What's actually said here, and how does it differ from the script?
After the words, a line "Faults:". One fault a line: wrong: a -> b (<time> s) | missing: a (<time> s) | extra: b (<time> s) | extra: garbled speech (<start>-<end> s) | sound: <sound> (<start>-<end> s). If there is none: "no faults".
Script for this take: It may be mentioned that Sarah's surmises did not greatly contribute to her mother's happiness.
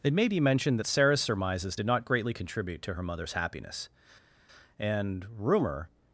It may be mentioned that Sarah's surmises did not greatly contribute to her mother's happiness. And rumor
Faults:
extra: And rumor (4.8 s)